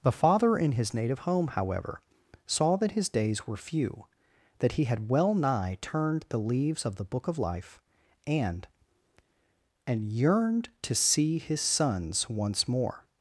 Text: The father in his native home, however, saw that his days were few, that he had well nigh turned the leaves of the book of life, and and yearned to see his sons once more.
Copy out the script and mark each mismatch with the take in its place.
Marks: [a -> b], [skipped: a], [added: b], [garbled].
The father in his native home, however, saw that his days were few, that he had well nigh turned the leaves of the book of life, and and yearned to see his sons once more.